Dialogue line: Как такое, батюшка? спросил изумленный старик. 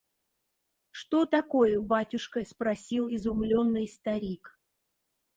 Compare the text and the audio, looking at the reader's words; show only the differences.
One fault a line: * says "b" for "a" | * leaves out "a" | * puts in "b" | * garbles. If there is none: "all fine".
* says "Что" for "Как"